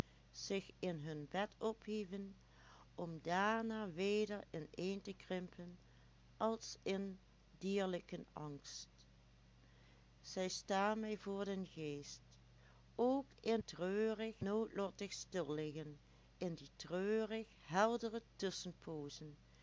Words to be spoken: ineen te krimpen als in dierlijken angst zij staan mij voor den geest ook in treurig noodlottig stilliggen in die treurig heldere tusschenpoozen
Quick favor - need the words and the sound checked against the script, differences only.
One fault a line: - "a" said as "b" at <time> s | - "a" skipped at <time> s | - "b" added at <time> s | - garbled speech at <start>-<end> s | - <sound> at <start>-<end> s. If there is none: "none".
none